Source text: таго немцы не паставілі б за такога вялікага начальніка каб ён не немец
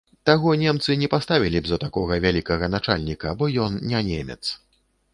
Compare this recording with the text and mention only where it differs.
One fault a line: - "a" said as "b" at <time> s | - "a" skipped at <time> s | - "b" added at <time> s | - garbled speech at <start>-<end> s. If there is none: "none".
- "каб" said as "бо" at 3.4 s